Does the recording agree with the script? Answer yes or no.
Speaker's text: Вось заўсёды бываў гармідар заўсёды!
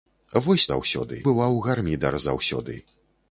yes